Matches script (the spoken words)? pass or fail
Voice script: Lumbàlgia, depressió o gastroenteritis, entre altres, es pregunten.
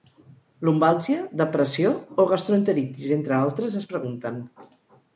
pass